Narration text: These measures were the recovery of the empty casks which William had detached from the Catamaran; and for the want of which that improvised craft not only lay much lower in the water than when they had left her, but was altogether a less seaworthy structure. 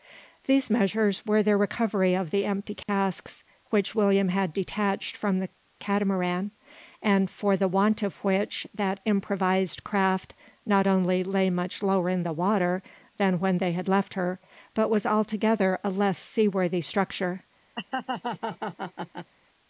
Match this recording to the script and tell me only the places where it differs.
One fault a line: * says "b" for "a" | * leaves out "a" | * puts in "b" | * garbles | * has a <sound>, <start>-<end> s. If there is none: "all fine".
* has a dropout, 2.8-2.9 s
* has a laugh, 17.8-19.3 s